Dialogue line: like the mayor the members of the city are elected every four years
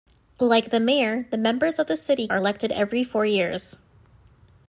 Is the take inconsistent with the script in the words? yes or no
no